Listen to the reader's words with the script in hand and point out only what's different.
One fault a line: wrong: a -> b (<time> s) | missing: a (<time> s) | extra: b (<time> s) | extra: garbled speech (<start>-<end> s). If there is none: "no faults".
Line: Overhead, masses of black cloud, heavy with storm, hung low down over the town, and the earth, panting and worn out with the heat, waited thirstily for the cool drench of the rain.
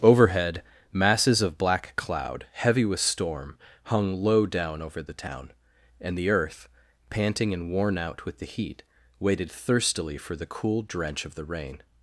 no faults